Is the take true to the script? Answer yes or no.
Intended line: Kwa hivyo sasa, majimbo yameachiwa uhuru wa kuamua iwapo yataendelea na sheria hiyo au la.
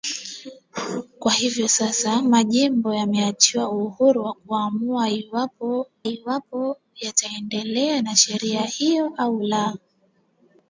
no